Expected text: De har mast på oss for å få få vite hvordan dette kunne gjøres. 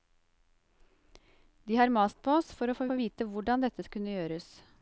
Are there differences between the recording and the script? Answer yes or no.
no